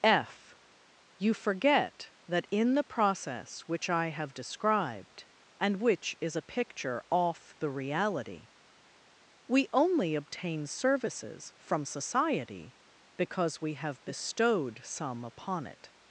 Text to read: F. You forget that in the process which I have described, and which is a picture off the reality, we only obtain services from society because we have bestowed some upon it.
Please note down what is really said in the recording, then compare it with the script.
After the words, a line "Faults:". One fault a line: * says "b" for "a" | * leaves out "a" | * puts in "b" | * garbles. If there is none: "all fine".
F. You forget that in the process which I have described, and which is a picture off the reality, we only obtain services from society because we have bestowed some upon it.
Faults:
all fine